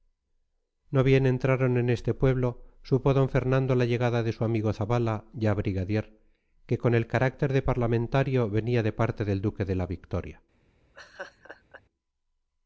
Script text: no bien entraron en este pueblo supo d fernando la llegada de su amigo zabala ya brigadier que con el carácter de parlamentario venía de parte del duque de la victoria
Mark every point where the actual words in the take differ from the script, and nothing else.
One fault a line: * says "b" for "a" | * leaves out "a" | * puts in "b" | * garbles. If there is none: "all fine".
all fine